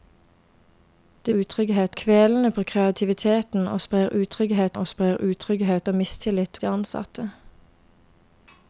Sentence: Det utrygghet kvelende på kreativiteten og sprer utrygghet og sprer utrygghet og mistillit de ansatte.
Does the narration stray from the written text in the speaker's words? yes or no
no